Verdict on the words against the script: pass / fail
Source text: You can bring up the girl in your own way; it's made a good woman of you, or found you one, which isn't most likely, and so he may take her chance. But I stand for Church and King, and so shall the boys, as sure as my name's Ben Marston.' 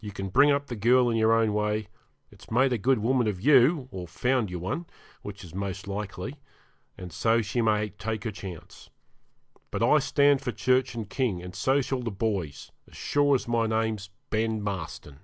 fail